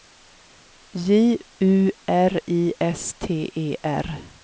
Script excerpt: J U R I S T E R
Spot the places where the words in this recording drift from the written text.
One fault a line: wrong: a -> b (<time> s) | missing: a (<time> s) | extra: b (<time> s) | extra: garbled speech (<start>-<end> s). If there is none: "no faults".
no faults